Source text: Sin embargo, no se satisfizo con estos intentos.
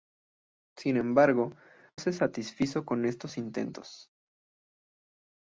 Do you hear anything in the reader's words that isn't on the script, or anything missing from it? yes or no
yes